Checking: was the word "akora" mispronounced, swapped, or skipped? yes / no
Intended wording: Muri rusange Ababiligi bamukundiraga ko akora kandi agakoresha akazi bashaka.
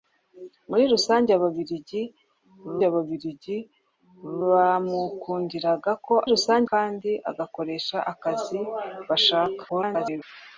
yes